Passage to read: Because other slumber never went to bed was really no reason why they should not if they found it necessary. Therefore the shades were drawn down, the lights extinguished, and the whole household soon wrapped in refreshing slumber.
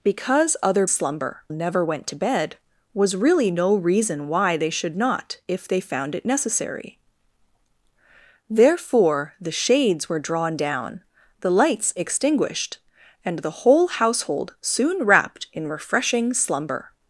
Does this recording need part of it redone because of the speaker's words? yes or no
no